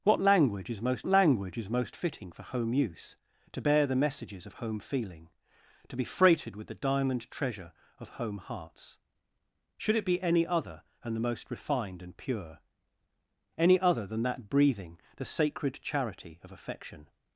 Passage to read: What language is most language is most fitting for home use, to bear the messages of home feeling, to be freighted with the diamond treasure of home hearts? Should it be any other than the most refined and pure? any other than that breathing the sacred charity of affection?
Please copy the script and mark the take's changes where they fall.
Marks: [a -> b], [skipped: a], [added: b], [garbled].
What language is most language is most fitting for home use, to bear the messages of home feeling, to be freighted with the diamond treasure of home hearts? Should it be any other than the most refined and pure? any other than that breathing the sacred charity of affection?